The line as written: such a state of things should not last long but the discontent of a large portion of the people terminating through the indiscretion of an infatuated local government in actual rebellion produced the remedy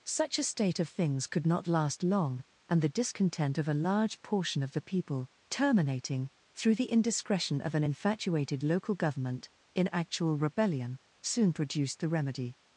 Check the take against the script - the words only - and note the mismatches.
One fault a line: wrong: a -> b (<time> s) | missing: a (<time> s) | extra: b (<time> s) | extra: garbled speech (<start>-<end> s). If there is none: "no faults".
wrong: should -> could (1.3 s)
wrong: but -> and (2.7 s)
extra: soon (11.2 s)